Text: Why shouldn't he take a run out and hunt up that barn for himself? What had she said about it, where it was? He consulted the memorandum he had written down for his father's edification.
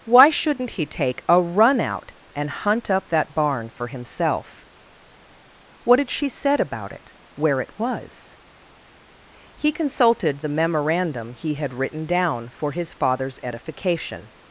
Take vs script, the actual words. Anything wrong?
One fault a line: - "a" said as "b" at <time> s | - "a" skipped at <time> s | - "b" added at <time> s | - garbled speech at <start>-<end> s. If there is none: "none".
none